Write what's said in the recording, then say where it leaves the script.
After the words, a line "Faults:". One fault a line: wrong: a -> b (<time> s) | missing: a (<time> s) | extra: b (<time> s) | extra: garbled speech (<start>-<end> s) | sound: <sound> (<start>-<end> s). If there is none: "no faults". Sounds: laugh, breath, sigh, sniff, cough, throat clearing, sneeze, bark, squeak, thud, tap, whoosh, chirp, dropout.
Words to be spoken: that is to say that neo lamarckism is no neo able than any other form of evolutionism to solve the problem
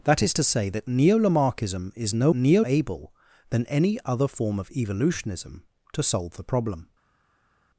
that is to say that neo lamarckism is no neo able than any other form of evolutionism to solve the problem
Faults:
no faults